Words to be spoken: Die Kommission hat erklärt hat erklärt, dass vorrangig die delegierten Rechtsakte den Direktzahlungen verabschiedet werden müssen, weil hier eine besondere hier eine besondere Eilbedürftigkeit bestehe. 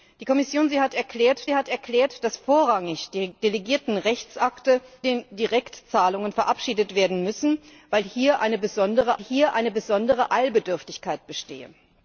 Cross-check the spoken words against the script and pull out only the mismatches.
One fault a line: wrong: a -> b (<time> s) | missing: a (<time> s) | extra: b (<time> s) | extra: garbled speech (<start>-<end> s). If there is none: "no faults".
no faults